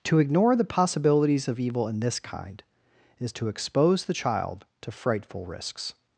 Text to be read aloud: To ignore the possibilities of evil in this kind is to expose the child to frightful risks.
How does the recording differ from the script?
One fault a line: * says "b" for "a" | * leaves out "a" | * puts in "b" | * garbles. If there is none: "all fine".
all fine